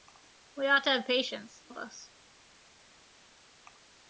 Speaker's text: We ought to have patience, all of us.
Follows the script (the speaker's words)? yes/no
no